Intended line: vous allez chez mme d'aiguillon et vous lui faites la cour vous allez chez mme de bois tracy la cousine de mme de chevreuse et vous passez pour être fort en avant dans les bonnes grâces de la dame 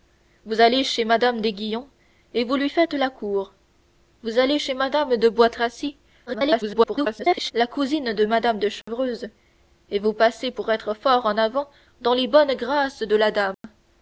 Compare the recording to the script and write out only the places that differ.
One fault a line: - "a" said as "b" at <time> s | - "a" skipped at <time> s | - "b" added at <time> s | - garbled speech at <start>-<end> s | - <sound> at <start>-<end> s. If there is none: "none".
- garbled speech at 6.3-7.5 s
- dropout at 8.8-8.9 s
- dropout at 13.5-13.6 s